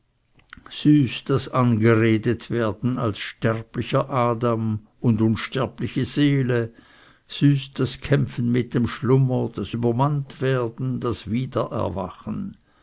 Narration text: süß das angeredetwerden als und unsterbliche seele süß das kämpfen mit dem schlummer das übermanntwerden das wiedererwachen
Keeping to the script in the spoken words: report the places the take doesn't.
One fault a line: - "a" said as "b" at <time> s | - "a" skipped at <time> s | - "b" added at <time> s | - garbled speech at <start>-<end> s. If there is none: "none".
- "sterblicher adam" added at 3.2 s